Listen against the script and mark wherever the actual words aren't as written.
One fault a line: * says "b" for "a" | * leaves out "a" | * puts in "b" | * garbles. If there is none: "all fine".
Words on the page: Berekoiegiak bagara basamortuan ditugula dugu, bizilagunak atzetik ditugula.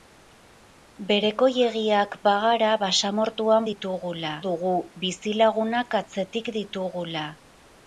all fine